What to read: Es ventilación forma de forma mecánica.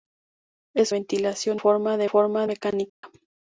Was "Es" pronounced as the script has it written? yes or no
yes